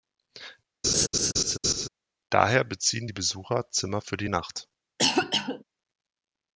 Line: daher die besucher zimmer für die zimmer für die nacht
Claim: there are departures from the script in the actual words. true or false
true